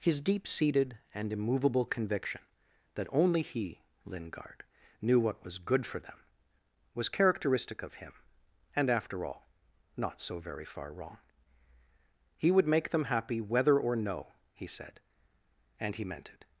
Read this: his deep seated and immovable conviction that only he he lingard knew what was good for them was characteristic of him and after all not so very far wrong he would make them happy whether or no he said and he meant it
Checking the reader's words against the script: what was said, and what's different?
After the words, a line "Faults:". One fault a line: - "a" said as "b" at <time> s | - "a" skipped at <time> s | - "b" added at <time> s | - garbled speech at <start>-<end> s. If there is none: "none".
his deep seated and immovable conviction that only he lingard knew what was good for them was characteristic of him and after all not so very far wrong he would make them happy whether or no he said and he meant it
Faults:
- "he" skipped at 3.8 s